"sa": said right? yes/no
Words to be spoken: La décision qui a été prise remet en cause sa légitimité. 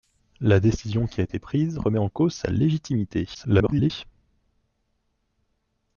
yes